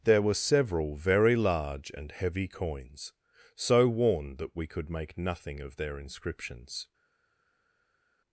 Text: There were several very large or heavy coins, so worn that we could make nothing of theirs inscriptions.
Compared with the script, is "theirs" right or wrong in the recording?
wrong